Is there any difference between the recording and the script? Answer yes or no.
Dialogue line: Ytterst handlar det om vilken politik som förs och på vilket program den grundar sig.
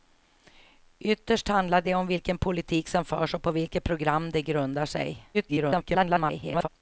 yes